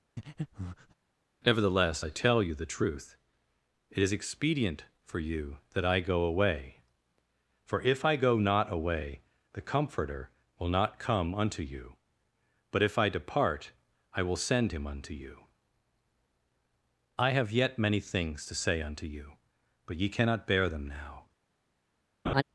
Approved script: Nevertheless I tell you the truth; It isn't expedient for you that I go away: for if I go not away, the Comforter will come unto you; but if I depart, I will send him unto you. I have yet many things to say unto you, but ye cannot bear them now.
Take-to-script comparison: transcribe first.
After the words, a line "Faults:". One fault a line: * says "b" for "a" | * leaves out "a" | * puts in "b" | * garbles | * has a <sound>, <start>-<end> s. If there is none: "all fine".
Nevertheless I tell you the truth; It is expedient for you that I go away: for if I go not away, the Comforter will not come unto you; but if I depart, I will send him unto you. I have yet many things to say unto you, but ye cannot bear them now.
Faults:
* has a breath, 0.2-0.9 s
* says "is" for "isn't"
* puts in "not"
* has a laugh, 22.3-22.4 s